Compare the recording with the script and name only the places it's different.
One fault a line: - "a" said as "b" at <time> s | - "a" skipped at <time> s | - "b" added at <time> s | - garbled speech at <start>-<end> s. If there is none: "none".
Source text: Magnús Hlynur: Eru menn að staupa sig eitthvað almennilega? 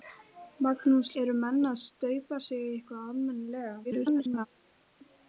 - "Hlynur" skipped at 1.1 s
- garbled speech at 3.8-4.5 s